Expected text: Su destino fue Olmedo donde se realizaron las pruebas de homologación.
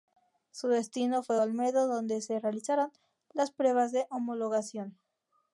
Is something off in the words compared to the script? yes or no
no